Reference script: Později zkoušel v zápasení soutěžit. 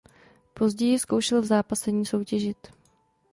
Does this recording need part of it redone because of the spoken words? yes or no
no